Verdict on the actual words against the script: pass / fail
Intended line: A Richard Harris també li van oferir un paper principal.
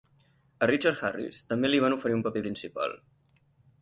pass